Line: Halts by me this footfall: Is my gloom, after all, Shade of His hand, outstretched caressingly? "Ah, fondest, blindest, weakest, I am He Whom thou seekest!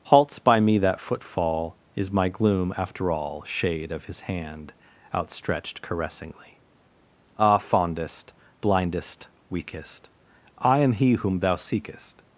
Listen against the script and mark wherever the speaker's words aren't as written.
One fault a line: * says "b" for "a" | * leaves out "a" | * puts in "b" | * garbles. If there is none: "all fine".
* says "that" for "this"